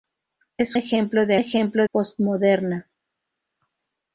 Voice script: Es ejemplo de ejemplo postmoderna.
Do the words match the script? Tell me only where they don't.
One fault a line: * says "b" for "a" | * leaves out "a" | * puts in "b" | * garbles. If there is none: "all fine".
all fine